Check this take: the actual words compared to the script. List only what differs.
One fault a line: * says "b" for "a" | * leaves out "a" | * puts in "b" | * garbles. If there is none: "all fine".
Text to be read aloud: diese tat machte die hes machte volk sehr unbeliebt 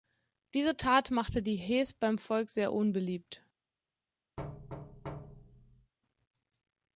* says "beim" for "machte"